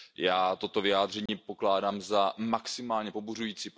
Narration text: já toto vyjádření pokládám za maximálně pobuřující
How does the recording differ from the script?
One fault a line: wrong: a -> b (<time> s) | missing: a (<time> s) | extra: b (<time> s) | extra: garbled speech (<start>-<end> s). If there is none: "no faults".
no faults